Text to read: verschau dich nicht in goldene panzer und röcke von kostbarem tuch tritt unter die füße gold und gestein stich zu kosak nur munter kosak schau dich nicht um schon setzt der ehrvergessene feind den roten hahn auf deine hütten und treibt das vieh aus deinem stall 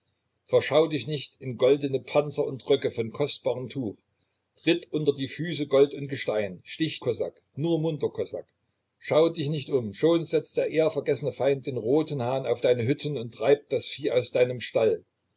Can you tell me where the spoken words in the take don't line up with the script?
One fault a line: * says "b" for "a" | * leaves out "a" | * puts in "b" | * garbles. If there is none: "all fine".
* leaves out "zu"